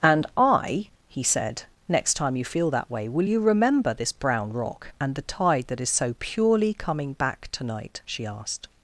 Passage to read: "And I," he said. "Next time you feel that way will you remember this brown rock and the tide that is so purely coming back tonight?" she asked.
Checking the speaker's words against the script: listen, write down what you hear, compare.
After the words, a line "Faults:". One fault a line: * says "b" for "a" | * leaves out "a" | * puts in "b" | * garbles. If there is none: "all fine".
"And I," he said. "Next time you feel that way will you remember this brown rock and the tide that is so purely coming back tonight?" she asked.
Faults:
all fine